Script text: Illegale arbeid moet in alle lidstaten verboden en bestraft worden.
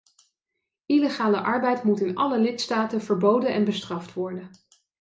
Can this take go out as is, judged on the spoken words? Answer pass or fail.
pass